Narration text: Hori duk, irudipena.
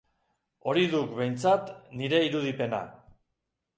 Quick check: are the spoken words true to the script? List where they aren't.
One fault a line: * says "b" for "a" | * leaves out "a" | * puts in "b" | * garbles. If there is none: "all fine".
* puts in "behintzat nire"